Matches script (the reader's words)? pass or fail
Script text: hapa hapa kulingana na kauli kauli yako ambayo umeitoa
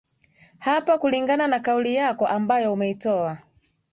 fail